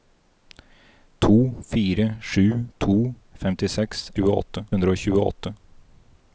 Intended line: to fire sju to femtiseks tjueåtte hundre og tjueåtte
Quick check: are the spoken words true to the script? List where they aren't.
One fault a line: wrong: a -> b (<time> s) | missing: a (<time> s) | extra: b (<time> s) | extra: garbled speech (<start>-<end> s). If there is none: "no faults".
no faults